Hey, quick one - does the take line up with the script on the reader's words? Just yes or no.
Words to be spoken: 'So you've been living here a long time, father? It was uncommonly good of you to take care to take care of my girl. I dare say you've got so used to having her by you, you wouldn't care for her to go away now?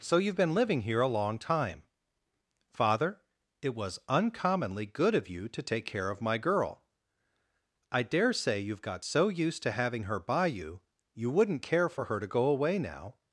no